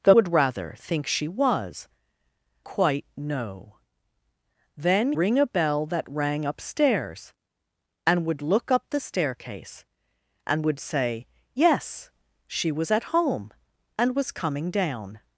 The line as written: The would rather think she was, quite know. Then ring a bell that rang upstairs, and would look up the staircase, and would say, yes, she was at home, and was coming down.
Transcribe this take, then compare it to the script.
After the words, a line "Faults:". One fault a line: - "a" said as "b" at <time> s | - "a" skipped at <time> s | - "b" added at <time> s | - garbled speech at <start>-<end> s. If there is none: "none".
The would rather think she was, quite know. Then ring a bell that rang upstairs, and would look up the staircase, and would say, yes, she was at home, and was coming down.
Faults:
none